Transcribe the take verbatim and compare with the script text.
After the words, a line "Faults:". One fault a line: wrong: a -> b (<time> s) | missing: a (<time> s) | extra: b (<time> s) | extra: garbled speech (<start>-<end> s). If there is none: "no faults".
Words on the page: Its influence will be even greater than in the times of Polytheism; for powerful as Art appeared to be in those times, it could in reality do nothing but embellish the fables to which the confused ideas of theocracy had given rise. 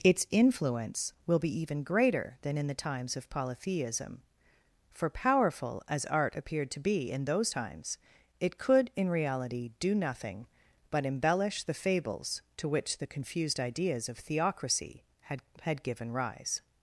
Its influence will be even greater than in the times of Polytheism; for powerful as Art appeared to be in those times, it could in reality do nothing but embellish the fables to which the confused ideas of theocracy had had given rise.
Faults:
extra: had (15.6 s)